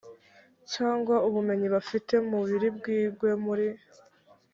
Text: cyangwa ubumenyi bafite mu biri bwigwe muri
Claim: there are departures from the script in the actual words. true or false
false